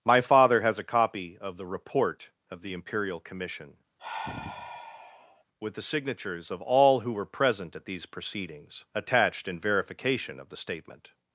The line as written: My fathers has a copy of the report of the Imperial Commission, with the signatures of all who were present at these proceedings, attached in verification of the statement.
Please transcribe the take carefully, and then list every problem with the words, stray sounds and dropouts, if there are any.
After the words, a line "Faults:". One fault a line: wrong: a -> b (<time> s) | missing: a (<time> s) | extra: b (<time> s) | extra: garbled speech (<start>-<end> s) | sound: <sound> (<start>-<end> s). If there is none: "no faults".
My father has a copy of the report of the Imperial Commission, with the signatures of all who were present at these proceedings, attached in verification of the statement.
Faults:
wrong: fathers -> father (0.2 s)
sound: sigh (4.0-5.4 s)